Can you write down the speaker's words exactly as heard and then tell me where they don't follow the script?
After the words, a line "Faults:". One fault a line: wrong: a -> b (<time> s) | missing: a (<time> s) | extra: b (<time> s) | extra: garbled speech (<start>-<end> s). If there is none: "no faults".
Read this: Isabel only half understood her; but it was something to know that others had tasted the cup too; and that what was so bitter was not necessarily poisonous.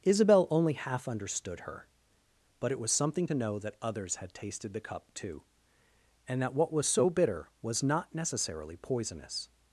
Isabel only half understood her; but it was something to know that others had tasted the cup too; and that what was so bitter was not necessarily poisonous.
Faults:
no faults